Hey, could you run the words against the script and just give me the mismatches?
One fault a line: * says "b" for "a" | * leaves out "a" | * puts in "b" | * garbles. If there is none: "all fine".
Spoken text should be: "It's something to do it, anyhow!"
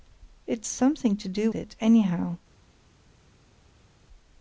all fine